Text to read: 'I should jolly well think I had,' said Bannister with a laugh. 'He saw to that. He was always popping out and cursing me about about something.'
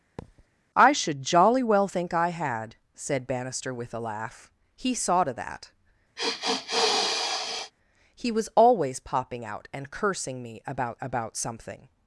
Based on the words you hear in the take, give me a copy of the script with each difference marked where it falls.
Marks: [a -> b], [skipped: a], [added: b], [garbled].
'I should jolly well think I had,' said Bannister with a laugh. 'He saw to that. He was always popping out and cursing me about about something.'